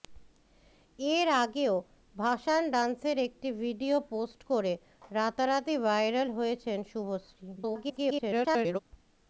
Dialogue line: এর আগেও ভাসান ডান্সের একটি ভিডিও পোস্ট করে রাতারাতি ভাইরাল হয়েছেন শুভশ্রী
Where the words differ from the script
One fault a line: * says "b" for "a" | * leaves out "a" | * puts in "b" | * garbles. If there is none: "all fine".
* garbles